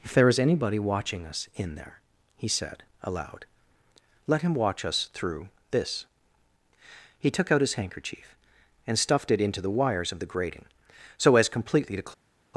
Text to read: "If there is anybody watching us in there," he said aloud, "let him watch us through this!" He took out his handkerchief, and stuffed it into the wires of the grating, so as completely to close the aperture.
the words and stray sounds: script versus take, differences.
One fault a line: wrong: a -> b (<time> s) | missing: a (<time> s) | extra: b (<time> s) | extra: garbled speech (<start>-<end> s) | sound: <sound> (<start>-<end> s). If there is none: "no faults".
missing: the aperture (12.1 s)